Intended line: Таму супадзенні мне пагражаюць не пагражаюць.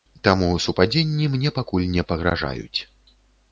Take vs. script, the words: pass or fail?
fail